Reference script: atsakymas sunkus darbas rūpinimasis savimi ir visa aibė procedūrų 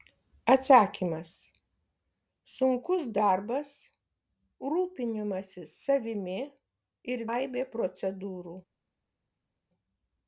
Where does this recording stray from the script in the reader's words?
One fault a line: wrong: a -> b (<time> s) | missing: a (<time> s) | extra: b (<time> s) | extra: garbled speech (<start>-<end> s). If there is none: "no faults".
missing: visa (7.2 s)